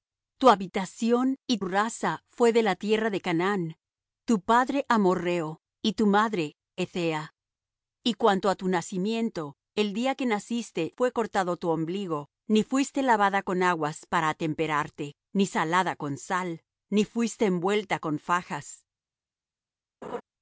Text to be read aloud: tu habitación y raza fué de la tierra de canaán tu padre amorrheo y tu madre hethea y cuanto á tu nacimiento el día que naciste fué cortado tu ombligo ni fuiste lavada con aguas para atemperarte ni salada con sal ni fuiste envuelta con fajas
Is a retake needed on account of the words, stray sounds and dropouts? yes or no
yes